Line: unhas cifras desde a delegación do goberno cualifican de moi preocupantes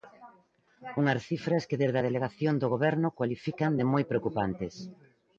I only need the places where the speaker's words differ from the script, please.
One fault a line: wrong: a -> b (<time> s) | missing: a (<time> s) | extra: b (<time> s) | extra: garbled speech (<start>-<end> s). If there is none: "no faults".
extra: que (1.7 s)